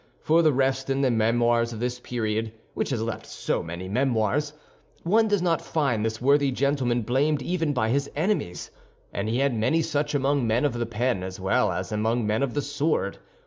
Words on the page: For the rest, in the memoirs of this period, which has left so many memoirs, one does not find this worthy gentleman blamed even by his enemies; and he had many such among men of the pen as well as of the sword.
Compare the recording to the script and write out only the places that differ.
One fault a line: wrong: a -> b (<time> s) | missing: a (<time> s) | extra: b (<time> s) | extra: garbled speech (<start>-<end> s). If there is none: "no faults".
extra: among men (11.9 s)